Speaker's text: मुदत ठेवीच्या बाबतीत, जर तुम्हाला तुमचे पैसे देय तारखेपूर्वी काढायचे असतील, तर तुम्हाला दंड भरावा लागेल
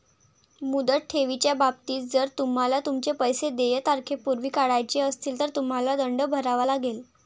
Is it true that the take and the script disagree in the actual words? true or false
false